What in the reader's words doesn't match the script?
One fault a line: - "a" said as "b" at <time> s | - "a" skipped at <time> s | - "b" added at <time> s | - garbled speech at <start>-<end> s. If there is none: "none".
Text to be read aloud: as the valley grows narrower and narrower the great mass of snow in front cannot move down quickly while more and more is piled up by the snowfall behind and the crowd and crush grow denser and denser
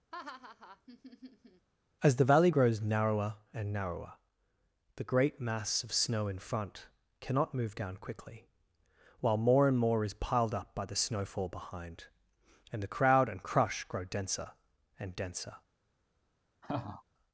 none